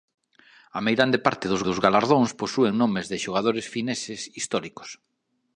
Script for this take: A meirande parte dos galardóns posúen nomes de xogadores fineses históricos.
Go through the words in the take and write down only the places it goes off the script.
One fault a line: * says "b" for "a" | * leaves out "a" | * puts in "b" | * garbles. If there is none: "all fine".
* puts in "dos"